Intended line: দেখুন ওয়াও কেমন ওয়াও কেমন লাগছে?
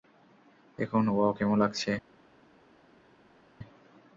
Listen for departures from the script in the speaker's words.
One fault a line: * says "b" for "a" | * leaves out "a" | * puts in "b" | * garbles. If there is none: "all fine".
* leaves out "ওয়াও কেমন"